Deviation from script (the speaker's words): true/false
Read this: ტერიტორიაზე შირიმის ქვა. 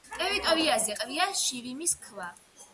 true